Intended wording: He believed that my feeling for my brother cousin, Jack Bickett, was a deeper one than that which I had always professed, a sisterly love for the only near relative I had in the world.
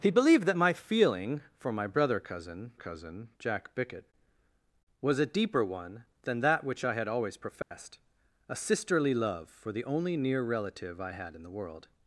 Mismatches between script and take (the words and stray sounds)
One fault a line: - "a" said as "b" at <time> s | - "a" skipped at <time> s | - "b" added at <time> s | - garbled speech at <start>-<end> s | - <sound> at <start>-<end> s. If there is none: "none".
- "cousin" added at 2.7 s
- dropout at 7.6-7.7 s